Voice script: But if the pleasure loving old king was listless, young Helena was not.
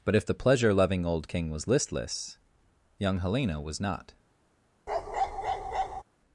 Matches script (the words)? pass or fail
pass